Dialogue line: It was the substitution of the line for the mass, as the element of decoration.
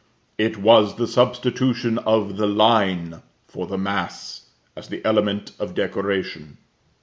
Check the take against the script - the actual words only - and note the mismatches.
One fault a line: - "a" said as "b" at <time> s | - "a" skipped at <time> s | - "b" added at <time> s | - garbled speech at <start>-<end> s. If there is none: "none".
none